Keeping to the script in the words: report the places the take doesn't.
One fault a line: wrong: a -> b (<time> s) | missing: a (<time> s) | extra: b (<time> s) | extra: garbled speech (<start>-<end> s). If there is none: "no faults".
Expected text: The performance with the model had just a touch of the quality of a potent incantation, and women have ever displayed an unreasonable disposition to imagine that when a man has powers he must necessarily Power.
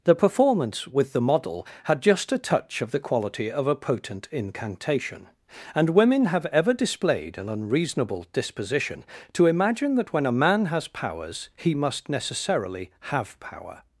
extra: have (13.1 s)